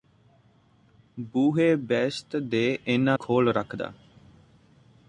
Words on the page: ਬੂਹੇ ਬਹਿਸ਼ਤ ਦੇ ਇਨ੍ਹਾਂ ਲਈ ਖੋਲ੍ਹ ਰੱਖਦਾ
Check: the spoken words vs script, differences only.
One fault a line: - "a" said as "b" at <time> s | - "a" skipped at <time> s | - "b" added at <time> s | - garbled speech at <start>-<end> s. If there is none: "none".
- "ਲਈ" skipped at 3.2 s